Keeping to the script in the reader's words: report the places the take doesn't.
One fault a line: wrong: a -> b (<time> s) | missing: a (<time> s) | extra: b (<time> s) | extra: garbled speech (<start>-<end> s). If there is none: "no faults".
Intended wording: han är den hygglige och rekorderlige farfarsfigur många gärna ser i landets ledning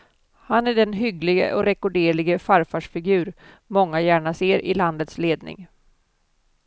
no faults